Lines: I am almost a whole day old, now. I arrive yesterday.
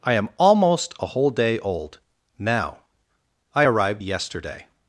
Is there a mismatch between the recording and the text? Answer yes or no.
yes